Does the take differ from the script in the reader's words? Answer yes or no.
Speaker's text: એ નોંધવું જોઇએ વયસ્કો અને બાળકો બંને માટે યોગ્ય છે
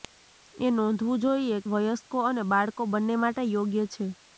no